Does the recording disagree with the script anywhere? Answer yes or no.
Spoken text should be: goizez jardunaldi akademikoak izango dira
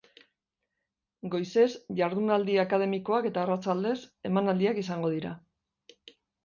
yes